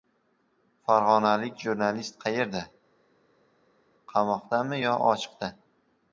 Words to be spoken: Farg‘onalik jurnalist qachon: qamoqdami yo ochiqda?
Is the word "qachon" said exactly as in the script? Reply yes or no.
no